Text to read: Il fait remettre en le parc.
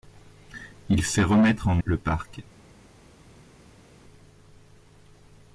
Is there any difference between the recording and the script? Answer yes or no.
no